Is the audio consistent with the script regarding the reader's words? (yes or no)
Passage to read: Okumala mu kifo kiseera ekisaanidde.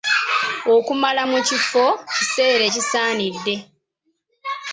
yes